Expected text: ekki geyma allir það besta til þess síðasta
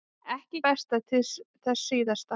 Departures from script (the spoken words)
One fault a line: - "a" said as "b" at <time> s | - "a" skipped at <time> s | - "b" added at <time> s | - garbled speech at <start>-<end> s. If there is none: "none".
- "geyma allir það" skipped at 0.6 s